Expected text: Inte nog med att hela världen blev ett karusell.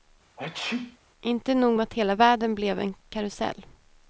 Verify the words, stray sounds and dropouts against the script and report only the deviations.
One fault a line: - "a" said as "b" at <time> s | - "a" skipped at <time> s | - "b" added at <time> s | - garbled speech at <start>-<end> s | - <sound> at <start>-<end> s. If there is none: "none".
- sneeze at 0.4-1.0 s
- "ett" said as "en" at 2.8 s